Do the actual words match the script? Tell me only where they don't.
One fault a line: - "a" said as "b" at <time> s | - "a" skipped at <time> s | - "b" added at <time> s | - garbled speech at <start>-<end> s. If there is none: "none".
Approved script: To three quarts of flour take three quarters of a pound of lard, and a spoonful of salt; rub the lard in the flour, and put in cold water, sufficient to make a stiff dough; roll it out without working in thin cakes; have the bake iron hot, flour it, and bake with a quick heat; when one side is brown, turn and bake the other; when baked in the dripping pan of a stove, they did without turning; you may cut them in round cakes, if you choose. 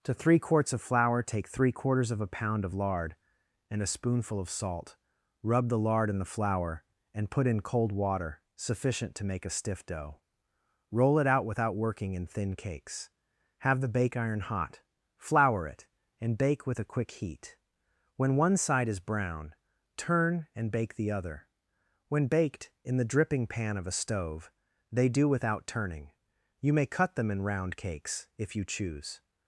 - "did" said as "do" at 25.1 s